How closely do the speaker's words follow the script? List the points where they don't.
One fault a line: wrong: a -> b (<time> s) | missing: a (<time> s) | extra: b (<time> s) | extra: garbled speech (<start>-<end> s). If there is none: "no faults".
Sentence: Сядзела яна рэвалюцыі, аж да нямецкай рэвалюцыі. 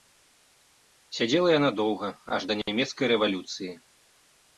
wrong: рэвалюцыі -> доўга (1.8 s)